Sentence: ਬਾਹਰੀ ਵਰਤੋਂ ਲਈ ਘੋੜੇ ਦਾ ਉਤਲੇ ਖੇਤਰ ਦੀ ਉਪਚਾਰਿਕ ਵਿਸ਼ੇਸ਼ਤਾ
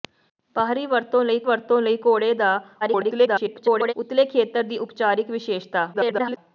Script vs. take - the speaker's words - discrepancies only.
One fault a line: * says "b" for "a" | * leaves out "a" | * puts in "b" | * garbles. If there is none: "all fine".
* puts in "ਵਰਤੋਂ ਲਈ"
* garbles
* garbles